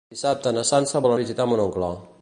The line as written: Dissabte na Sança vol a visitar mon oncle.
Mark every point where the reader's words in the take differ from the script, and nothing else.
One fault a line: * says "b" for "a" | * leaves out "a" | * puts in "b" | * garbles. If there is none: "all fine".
all fine